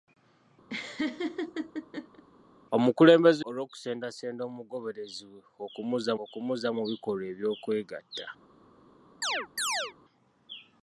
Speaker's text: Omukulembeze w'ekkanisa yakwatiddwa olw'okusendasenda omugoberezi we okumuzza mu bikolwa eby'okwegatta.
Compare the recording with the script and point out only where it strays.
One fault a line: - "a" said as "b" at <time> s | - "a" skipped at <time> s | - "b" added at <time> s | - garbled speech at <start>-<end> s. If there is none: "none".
- "w'ekkanisa yakwatiddwa" skipped at 3.4 s
- "okumuzza" added at 6.2 s